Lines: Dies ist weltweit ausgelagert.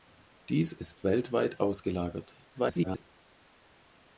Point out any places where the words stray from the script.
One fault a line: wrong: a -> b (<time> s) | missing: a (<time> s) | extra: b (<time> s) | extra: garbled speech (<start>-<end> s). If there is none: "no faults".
extra: garbled speech (2.5-3.0 s)